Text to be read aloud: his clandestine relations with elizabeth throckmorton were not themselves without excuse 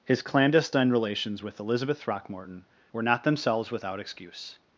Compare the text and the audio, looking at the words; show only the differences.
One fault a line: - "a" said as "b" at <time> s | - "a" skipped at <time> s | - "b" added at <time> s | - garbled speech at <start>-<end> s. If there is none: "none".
none